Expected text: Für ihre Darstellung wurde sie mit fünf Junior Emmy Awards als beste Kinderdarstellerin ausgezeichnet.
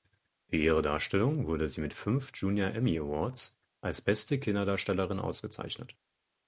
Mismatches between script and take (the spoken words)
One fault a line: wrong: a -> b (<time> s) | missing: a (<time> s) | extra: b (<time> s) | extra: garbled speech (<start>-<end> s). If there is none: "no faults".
no faults